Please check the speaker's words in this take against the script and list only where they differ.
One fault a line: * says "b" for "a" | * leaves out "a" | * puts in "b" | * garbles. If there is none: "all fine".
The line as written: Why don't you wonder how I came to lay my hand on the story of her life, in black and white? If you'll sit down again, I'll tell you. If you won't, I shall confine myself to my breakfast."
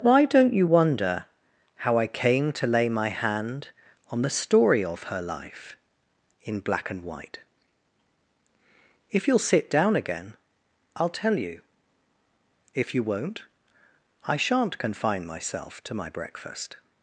* says "shan't" for "shall"